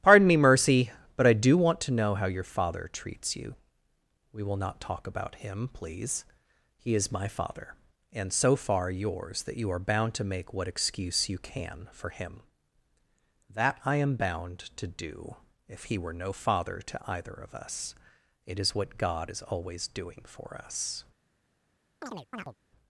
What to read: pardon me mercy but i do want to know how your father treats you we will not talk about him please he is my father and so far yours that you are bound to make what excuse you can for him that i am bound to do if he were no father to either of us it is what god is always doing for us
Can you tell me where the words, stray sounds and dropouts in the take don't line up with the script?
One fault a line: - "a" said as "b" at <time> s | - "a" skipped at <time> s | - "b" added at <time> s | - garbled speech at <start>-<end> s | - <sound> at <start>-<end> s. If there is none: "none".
- chirp at 22.0-22.6 s